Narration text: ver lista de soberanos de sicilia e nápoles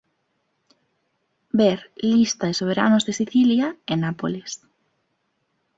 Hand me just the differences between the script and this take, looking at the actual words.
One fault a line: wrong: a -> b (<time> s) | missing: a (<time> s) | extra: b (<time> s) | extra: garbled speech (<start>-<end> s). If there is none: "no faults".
no faults